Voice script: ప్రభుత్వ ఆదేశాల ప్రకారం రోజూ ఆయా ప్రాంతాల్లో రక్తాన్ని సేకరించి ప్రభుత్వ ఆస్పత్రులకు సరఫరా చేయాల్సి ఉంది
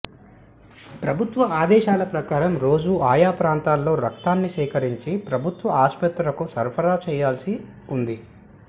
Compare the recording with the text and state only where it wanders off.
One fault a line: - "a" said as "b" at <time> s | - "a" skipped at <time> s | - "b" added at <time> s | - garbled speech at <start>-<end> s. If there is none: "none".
none